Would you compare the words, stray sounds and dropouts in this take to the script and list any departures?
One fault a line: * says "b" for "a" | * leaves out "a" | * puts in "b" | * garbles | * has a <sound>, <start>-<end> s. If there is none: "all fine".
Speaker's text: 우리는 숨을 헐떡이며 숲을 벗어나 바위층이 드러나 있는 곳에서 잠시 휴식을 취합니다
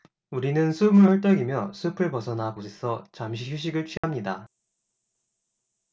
* leaves out "바위층이 드러나 있는"
* has a dropout, 4.0-4.0 s